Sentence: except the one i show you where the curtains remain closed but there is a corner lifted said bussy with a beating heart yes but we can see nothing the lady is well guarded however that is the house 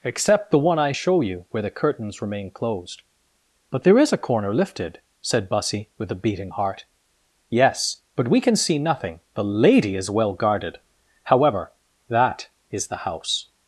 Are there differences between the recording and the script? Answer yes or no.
no